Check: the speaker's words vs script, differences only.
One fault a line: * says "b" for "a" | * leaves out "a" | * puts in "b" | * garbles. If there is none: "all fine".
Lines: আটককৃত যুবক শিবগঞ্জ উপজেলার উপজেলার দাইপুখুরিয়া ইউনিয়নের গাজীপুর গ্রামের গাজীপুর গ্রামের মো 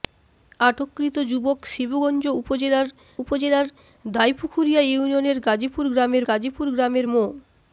all fine